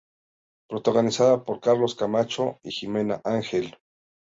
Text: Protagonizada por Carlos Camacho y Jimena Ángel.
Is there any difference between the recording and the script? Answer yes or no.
no